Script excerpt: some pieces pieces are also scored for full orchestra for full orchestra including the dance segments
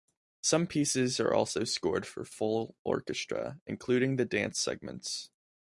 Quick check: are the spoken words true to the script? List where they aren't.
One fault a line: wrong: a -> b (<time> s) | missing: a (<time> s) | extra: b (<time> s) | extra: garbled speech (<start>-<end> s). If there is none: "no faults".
missing: pieces (1.2 s)
missing: for full orchestra (3.6 s)